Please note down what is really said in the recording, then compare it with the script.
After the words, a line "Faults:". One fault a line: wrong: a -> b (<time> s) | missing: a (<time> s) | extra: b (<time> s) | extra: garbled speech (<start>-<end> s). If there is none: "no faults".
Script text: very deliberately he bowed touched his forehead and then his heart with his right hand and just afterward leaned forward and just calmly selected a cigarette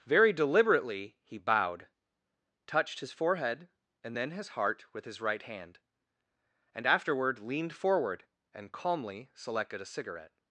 very deliberately he bowed touched his forehead and then his heart with his right hand and afterward leaned forward and calmly selected a cigarette
Faults:
missing: just (6.9 s)
missing: just (8.7 s)